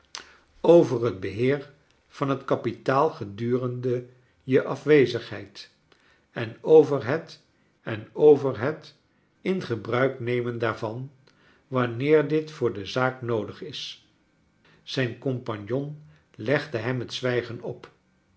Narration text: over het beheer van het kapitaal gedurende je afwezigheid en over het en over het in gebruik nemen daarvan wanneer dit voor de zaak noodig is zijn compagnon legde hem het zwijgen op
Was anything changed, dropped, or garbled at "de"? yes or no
no